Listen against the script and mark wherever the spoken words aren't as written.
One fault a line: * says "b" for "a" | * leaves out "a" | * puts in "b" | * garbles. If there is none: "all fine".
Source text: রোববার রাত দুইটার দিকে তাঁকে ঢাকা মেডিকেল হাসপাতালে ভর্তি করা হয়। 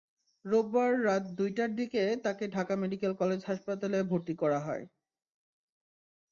* puts in "কলেজ"